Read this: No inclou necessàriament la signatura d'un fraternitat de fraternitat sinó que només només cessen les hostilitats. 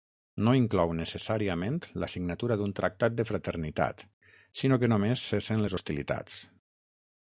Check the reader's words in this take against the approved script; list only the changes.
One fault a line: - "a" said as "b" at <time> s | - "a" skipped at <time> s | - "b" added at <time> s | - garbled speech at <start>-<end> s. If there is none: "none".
- "fraternitat" said as "tractat" at 2.8 s
- "només" skipped at 5.3 s